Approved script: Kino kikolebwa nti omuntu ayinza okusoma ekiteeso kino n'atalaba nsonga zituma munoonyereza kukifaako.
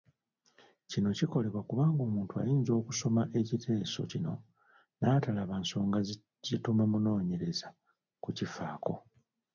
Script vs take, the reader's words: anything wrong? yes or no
yes